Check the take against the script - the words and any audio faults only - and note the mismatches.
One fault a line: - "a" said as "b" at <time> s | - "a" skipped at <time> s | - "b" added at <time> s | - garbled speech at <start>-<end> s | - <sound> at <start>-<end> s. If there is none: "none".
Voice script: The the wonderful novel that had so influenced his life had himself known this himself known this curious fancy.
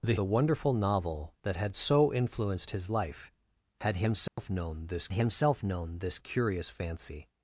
- dropout at 4.3-4.4 s